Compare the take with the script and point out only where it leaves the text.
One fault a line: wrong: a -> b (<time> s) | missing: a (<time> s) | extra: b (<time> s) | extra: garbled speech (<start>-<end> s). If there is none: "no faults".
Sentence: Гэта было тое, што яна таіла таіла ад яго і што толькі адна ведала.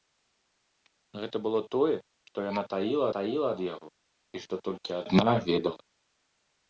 no faults